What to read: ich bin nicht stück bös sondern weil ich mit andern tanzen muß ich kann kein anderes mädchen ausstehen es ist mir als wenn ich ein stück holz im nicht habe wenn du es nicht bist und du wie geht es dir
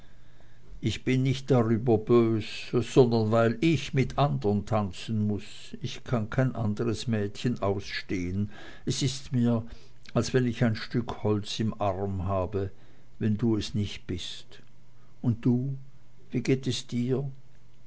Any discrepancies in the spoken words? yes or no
yes